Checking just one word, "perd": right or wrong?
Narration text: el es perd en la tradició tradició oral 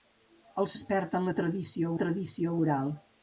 right